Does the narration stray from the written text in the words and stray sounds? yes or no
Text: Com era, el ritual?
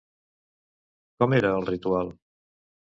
no